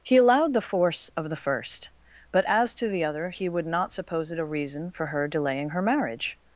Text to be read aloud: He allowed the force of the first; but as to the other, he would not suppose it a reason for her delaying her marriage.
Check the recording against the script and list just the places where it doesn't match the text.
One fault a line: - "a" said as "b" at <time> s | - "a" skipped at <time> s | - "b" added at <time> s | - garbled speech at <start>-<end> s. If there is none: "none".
none